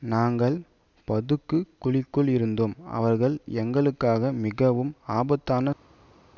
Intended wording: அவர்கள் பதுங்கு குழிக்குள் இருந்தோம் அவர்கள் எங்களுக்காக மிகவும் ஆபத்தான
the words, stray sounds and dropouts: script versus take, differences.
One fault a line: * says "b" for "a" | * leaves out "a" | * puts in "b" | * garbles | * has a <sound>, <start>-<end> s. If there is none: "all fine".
* says "நாங்கள்" for "அவர்கள்"